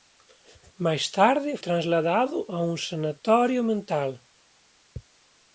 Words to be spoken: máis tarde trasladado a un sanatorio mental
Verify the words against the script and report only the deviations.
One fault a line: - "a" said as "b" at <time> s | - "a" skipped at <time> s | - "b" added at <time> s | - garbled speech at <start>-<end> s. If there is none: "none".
none